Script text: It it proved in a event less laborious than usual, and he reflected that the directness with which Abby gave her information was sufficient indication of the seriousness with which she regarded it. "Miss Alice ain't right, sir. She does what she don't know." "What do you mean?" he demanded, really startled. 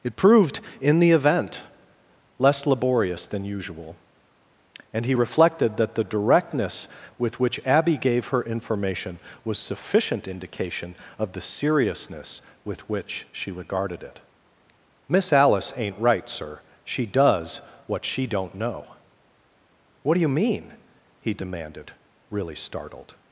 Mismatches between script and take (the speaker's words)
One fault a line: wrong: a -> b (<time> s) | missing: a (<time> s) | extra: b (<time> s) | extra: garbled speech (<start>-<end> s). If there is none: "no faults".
missing: it (0.1 s)
wrong: a -> the (1.0 s)